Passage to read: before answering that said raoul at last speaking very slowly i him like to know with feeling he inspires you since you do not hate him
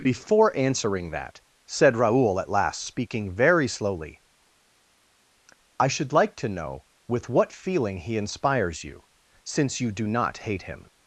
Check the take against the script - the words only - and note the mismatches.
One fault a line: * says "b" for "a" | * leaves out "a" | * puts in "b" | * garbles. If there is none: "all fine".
* says "should" for "him"
* puts in "what"